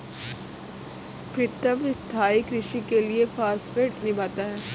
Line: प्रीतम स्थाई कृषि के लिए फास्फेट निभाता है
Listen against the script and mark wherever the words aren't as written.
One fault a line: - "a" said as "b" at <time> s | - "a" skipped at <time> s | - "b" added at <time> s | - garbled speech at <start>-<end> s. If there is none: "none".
none